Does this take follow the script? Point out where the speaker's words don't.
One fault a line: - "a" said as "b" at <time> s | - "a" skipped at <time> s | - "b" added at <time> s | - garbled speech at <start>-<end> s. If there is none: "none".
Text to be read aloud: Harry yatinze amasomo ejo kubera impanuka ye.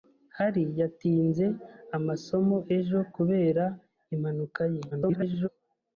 - garbled speech at 4.9-5.5 s